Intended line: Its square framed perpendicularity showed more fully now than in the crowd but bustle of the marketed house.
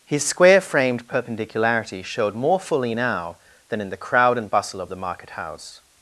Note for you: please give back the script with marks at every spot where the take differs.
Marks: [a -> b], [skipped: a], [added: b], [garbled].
[Its -> His] square framed perpendicularity showed more fully now than in the crowd [but -> and] bustle of the [marketed -> market] house.